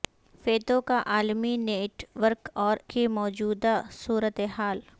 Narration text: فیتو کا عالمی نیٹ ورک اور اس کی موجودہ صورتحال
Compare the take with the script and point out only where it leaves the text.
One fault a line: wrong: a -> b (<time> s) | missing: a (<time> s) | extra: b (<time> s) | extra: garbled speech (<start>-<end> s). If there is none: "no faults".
missing: اس (2.8 s)